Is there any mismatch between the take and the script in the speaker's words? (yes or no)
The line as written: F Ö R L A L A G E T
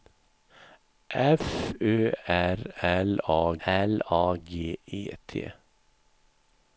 no